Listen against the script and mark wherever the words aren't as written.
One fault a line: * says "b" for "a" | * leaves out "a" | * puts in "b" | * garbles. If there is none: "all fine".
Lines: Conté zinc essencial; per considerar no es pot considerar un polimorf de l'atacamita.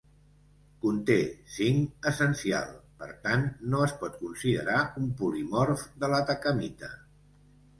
* says "tant" for "considerar"